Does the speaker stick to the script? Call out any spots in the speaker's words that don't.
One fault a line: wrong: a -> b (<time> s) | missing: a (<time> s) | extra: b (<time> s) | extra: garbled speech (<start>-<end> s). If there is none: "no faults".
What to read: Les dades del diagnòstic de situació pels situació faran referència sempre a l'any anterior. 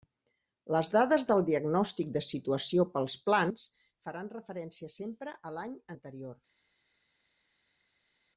wrong: situació -> plans (3.3 s)